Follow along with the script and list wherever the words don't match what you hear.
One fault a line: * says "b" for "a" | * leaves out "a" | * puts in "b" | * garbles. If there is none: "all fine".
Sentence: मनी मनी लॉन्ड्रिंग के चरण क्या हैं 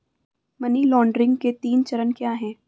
* leaves out "मनी"
* puts in "तीन"